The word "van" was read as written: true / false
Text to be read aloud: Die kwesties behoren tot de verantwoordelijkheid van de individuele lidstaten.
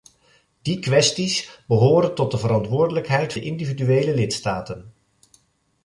false